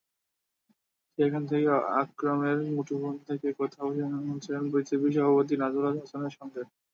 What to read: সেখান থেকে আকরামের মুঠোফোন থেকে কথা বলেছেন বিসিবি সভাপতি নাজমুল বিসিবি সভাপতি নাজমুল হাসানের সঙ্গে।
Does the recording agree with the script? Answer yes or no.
no